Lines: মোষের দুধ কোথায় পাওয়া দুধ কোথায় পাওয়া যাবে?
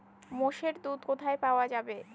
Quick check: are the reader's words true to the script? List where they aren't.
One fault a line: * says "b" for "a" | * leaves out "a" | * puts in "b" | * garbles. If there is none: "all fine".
* leaves out "দুধ কোথায় পাওয়া"